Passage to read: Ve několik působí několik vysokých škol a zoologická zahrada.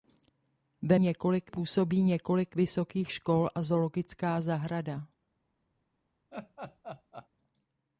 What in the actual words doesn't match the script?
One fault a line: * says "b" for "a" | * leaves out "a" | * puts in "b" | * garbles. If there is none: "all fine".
all fine